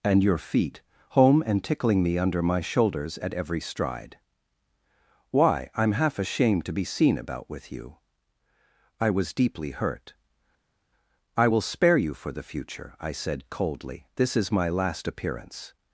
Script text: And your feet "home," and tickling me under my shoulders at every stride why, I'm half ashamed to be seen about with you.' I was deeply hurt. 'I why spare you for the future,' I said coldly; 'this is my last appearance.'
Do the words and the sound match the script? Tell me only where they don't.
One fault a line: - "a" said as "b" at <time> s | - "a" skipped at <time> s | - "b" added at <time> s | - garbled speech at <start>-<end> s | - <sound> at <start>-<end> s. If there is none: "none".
- "why" said as "will" at 11.5 s